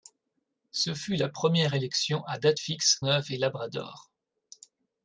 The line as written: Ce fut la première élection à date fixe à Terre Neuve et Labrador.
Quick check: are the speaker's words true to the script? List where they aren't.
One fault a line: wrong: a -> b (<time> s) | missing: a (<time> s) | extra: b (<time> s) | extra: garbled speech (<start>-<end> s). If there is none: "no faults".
missing: à Terre (3.0 s)